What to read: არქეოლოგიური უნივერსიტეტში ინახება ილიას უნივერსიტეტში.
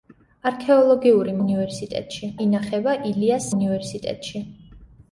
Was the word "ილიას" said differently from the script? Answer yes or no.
no